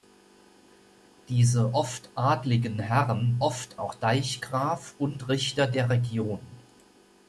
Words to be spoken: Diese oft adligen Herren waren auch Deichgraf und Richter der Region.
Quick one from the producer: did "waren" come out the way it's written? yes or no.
no